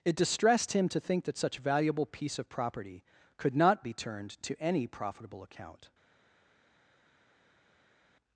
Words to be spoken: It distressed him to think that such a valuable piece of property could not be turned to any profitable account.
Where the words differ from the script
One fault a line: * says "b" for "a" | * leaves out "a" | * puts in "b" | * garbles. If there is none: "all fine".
* leaves out "a"